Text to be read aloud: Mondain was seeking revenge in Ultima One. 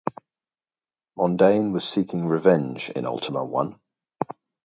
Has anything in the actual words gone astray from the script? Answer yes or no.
no